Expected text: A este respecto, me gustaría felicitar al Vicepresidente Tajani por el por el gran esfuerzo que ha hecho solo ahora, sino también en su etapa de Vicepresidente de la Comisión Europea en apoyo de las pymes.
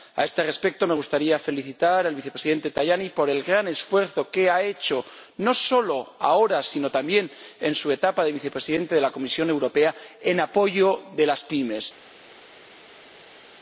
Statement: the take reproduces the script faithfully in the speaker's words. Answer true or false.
false